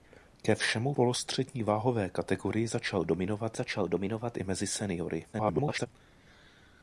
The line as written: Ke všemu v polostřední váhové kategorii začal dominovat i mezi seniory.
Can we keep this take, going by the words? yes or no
no